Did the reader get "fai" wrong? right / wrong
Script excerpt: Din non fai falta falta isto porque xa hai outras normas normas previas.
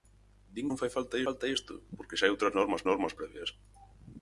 right